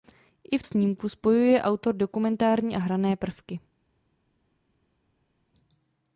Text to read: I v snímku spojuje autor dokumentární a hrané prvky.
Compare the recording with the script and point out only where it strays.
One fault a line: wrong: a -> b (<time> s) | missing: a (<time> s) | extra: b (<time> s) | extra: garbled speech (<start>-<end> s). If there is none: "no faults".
no faults